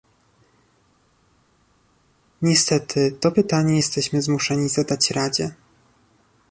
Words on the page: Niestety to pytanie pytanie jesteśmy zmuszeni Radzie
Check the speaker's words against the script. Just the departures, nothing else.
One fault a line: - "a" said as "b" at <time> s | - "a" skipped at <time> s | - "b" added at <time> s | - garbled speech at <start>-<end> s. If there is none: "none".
- "pytanie" skipped at 3.8 s
- "zadać" added at 4.7 s